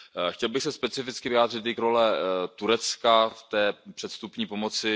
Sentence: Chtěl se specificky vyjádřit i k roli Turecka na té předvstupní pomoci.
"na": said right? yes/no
no